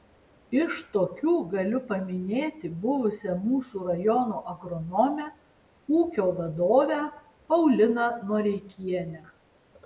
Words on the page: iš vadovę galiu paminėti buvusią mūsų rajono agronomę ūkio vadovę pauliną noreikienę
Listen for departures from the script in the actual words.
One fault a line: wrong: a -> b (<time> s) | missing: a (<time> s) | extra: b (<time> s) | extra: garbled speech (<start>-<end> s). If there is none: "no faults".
wrong: vadovę -> tokių (0.9 s)